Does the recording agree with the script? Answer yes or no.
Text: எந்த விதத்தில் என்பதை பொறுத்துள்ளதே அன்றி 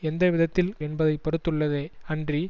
yes